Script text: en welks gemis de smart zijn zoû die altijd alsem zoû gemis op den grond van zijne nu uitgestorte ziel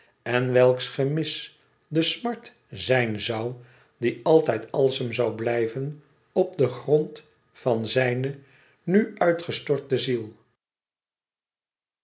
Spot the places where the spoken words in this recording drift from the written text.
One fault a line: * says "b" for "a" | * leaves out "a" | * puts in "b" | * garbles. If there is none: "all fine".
* says "blijven" for "gemis"